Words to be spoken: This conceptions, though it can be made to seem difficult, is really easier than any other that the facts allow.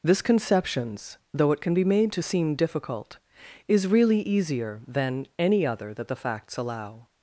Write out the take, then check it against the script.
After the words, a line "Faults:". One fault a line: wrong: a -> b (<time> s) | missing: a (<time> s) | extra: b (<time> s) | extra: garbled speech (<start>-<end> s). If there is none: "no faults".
This conceptions, though it can be made to seem difficult, is really easier than any other that the facts allow.
Faults:
no faults